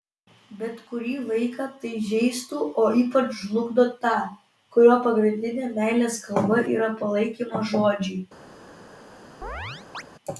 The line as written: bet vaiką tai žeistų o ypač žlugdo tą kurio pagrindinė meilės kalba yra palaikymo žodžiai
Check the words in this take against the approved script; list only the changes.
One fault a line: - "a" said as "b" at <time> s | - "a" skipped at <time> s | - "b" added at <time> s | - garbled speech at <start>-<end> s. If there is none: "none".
- "kurį" added at 0.9 s